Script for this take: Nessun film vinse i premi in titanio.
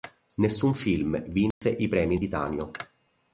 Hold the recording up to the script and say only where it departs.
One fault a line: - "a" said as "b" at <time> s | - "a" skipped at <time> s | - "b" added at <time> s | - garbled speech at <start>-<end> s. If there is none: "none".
none